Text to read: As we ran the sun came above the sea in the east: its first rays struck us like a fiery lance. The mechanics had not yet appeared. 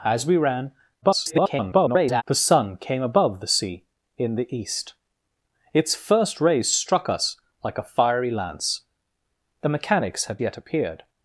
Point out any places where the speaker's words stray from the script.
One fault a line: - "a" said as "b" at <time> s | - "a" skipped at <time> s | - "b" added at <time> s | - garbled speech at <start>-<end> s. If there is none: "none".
- garbled speech at 1.0-2.2 s
- "not" skipped at 10.4 s